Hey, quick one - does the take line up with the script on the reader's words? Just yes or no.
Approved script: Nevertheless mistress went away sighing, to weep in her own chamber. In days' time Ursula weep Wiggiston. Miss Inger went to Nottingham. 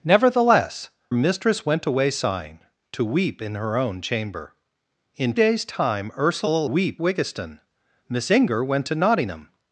yes